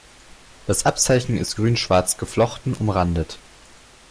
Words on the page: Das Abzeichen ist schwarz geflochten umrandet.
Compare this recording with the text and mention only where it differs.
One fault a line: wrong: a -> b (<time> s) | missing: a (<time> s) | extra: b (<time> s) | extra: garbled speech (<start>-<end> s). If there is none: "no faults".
extra: grün (1.5 s)